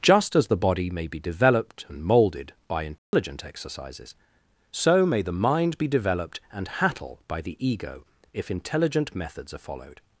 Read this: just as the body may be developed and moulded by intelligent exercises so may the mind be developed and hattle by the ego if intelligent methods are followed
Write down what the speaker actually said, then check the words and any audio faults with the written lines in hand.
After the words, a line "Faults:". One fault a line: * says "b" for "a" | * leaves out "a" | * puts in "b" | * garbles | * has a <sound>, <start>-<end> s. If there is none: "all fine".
just as the body may be developed and moulded by intelligent exercises so may the mind be developed and hattle by the ego if intelligent methods are followed
Faults:
* has a dropout, 3.0-3.1 s